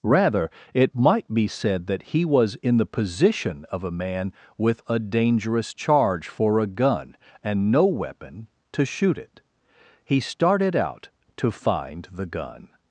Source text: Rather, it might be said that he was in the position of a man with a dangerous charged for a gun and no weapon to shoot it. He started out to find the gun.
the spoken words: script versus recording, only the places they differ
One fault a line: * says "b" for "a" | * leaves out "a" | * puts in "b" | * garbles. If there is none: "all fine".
* says "charge" for "charged"